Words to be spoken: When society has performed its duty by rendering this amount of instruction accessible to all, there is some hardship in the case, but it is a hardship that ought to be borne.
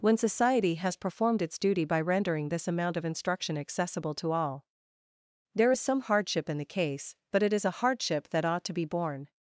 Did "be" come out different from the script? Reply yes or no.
no